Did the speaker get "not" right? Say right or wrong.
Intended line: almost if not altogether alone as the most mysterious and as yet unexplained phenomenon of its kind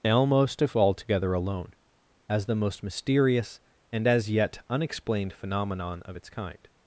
wrong